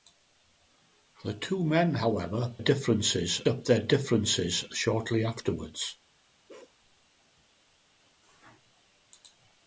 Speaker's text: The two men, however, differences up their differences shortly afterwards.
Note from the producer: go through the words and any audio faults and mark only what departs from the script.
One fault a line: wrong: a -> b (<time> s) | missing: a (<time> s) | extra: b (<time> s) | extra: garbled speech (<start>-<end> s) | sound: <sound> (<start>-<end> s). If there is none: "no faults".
sound: bark (6.5-6.8 s)